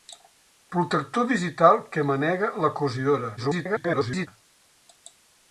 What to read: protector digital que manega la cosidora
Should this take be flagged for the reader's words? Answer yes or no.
yes